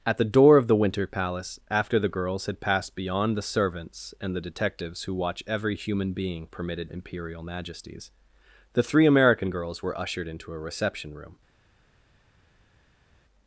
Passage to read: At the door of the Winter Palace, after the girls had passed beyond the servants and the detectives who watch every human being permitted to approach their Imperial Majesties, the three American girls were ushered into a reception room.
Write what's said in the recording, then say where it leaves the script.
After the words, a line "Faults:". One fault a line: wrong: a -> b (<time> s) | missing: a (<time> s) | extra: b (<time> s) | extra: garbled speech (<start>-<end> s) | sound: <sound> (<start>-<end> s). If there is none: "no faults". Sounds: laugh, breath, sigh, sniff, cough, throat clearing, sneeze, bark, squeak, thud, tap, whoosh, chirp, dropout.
At the door of the Winter Palace, after the girls had passed beyond the servants and the detectives who watch every human being permitted Imperial Majesties, the three American girls were ushered into a reception room.
Faults:
missing: to approach their (6.9 s)